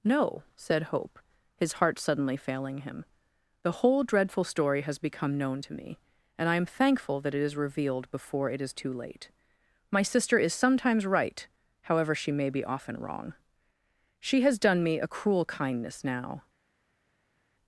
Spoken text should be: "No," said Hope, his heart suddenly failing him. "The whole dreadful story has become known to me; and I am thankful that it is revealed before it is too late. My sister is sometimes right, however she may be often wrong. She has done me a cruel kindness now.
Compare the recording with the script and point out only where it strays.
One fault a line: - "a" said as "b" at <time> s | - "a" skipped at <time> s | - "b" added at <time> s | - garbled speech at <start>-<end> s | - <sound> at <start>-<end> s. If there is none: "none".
none